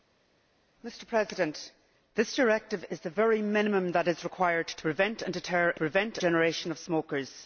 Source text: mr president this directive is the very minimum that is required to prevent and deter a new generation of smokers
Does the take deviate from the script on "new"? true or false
true